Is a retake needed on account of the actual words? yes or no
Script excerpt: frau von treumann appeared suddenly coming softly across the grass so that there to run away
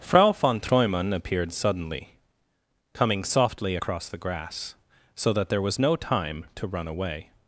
yes